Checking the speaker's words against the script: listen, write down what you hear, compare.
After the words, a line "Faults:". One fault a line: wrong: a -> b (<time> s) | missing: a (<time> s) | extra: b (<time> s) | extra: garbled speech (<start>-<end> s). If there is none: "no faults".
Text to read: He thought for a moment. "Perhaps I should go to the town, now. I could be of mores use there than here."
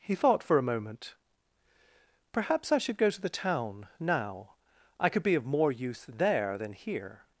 He thought for a moment. "Perhaps I should go to the town, now. I could be of more use there than here."
Faults:
wrong: mores -> more (5.5 s)